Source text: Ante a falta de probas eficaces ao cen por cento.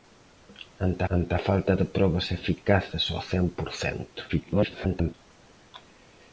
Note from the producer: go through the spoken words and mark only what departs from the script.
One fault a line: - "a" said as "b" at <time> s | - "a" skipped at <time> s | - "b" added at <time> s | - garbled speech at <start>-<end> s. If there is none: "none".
- "ante" added at 1.2 s
- garbled speech at 4.3-5.1 s